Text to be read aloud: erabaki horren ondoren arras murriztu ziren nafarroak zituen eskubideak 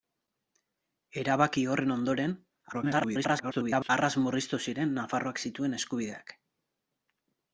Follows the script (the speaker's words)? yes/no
no